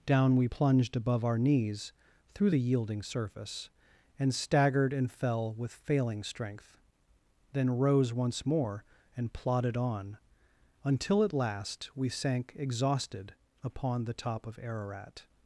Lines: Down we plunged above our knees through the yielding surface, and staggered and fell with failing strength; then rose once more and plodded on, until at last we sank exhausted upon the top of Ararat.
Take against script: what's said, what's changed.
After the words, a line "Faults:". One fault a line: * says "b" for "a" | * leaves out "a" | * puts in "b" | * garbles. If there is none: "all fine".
Down we plunged above our knees through the yielding surface, and staggered and fell with failing strength; then rose once more and plodded on, until at last we sank exhausted upon the top of Ararat.
Faults:
all fine